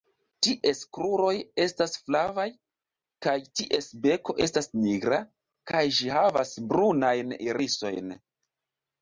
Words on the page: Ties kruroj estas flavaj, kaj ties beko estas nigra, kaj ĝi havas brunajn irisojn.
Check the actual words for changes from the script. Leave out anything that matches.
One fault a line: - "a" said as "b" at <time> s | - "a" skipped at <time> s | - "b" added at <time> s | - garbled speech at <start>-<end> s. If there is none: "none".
none